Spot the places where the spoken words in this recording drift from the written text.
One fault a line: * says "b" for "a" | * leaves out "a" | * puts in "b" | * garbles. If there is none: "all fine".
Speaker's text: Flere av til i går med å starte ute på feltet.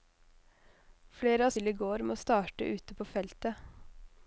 all fine